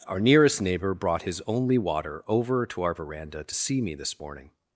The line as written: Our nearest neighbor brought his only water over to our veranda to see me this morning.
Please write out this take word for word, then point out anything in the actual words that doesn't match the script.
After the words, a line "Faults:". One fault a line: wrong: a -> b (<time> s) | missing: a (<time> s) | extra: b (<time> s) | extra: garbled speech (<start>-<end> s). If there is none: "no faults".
Our nearest neighbor brought his only water over to our veranda to see me this morning.
Faults:
no faults